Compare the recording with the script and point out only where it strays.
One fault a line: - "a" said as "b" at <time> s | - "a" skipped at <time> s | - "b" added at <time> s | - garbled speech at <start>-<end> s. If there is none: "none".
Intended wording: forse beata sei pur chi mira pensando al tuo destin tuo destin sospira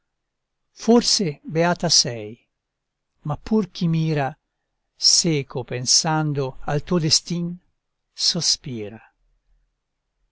- "ma" added at 3.3 s
- "seco" added at 5.0 s
- "tuo destin" skipped at 7.5 s